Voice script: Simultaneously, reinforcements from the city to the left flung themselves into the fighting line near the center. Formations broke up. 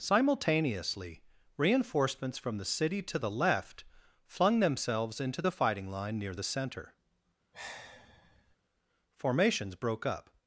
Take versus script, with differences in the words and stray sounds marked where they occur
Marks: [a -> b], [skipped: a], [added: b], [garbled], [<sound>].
Simultaneously, reinforcements from the city to the left flung themselves into the fighting line near the center. [sigh] Formations broke up.